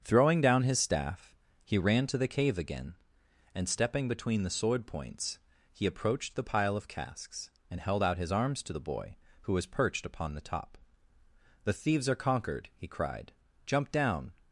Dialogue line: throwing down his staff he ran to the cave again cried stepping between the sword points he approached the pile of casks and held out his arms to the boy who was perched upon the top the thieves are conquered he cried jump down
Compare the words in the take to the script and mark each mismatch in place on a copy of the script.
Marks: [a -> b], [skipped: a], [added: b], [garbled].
throwing down his staff he ran to the cave again [cried -> and] stepping between the sword points he approached the pile of casks and held out his arms to the boy who was perched upon the top the thieves are conquered he cried jump down